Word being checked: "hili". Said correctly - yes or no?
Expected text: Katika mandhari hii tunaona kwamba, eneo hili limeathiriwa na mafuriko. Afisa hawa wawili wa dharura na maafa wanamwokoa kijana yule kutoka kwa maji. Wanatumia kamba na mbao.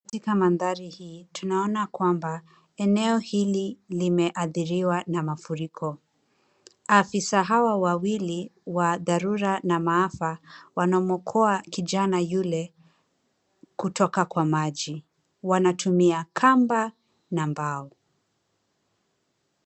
yes